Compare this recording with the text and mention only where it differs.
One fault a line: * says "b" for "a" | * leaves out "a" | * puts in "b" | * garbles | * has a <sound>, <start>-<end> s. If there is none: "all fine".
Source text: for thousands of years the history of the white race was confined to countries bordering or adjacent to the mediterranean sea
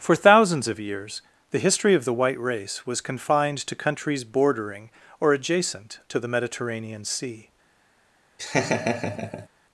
* has a laugh, 8.4-9.5 s